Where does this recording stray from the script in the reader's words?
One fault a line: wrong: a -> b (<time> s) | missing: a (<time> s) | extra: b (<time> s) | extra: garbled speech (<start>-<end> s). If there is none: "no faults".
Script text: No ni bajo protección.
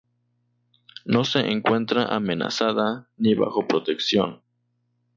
extra: se encuentra amenazada (1.2 s)